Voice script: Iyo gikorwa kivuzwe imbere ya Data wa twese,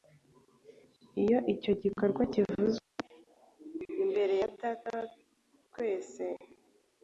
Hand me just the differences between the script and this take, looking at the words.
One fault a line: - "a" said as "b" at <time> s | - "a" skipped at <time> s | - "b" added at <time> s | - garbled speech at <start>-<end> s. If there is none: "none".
- "icyo" added at 1.5 s